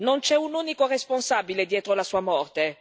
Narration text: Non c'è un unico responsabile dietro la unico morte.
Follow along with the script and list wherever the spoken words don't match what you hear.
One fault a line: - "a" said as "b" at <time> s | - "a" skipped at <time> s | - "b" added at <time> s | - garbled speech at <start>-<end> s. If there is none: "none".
- "unico" said as "sua" at 2.0 s